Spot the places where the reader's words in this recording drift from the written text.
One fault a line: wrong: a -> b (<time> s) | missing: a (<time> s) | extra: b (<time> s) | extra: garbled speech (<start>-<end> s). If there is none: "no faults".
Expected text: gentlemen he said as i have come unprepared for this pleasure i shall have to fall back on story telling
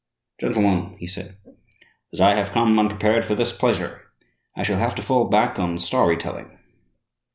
no faults